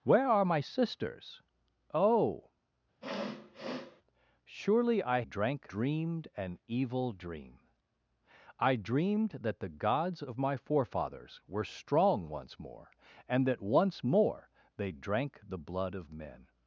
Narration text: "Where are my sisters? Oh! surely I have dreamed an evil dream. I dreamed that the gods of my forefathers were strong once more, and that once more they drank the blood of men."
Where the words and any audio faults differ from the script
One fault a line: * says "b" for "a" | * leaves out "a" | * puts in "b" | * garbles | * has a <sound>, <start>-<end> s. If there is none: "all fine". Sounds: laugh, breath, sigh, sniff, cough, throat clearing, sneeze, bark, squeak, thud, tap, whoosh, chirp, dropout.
* has a sniff, 3.0-4.0 s
* says "drank" for "have"